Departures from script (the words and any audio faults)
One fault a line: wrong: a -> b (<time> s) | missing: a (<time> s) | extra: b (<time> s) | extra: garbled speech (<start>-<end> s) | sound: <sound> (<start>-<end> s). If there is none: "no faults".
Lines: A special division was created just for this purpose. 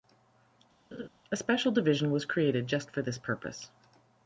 sound: laugh (0.9-1.1 s)